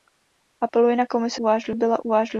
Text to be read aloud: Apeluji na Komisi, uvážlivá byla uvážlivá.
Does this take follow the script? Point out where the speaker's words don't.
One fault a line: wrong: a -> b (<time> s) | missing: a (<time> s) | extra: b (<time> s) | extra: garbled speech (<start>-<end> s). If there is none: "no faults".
no faults